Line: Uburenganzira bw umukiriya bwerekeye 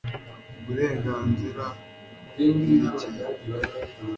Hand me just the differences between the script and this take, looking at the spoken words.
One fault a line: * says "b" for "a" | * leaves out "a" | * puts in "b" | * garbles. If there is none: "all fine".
* leaves out "umukiriya"